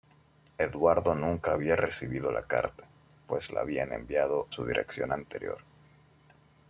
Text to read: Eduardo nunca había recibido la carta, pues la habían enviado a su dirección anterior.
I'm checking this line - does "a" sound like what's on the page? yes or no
no